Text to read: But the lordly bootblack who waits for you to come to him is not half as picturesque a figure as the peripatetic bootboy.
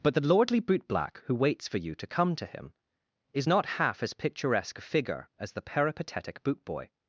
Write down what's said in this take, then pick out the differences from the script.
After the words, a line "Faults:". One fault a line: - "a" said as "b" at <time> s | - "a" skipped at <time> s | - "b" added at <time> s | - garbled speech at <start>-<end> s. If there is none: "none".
But the lordly bootblack who waits for you to come to him is not half as picturesque a figure as the peripatetic bootboy.
Faults:
none